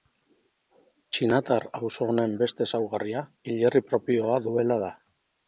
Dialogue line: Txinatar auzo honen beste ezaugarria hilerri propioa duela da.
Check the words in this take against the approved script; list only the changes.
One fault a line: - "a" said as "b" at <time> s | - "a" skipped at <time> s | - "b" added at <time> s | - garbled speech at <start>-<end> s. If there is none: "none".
none